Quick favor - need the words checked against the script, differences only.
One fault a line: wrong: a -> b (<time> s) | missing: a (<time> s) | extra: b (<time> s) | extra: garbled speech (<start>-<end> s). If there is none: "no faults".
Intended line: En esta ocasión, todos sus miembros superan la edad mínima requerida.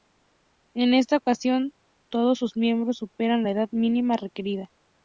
no faults